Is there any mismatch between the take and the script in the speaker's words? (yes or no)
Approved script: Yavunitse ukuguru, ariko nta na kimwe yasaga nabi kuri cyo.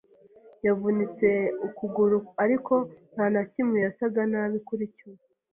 no